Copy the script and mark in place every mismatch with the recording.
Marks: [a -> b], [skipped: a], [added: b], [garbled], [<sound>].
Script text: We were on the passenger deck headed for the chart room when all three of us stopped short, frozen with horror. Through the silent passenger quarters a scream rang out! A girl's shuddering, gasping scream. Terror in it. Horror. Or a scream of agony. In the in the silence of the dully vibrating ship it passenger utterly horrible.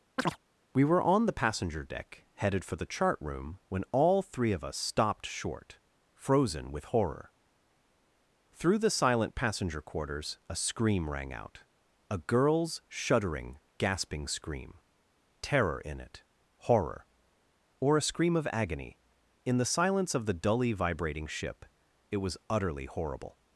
[chirp] We were on the passenger deck headed for the chart room when all three of us stopped short, frozen with horror. Through the silent passenger quarters a scream rang out! A girl's shuddering, gasping scream. Terror in it. Horror. Or a scream of agony. In the [skipped: in the] silence of the dully vibrating ship it [passenger -> was] utterly horrible.